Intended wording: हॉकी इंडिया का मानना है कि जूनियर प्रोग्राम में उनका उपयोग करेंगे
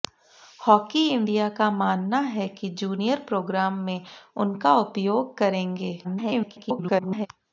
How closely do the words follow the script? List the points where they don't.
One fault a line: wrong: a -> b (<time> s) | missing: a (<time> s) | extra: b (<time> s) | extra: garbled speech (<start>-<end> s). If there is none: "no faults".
extra: garbled speech (6.0-7.3 s)